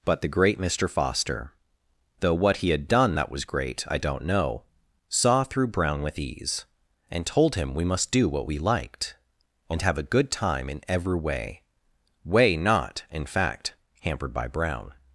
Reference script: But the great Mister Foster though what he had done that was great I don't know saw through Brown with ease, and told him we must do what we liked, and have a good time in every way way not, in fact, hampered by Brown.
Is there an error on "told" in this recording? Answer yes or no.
no